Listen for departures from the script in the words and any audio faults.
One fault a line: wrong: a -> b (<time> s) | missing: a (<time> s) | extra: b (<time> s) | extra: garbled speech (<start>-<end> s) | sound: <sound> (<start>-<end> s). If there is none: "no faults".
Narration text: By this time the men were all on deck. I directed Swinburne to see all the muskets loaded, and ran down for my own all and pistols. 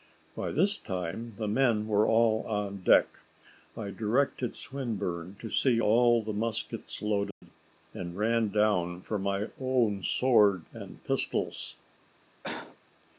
sound: dropout (7.3-7.4 s)
wrong: all -> sword (10.0 s)
sound: cough (12.4-12.8 s)